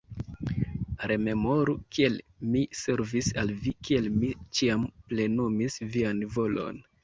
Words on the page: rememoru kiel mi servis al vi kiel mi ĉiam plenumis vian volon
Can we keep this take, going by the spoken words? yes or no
yes